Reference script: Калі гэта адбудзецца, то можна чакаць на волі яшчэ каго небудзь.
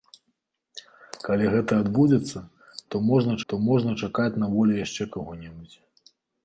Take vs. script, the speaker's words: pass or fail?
fail